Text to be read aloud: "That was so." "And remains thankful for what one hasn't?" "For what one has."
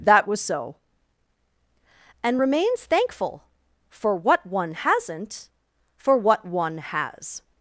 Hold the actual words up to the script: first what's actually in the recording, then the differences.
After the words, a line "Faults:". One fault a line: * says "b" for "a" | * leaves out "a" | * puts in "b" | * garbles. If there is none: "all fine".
"That was so." "And remains thankful for what one hasn't?" "For what one has."
Faults:
all fine